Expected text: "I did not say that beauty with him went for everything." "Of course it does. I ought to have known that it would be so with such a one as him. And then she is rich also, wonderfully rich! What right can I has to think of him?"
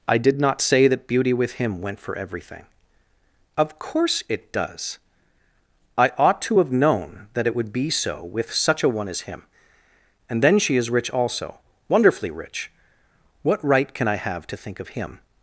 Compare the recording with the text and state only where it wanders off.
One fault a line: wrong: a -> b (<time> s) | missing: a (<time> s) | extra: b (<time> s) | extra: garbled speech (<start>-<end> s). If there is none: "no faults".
wrong: has -> have (14.1 s)